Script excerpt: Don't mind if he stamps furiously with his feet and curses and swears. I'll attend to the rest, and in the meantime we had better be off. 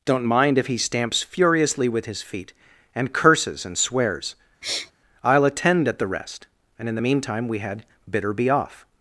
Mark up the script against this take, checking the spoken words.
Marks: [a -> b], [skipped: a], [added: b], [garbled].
Don't mind if he stamps furiously with his feet and curses and swears. I'll attend [to -> at] the rest, and in the meantime we had [better -> bitter] be off.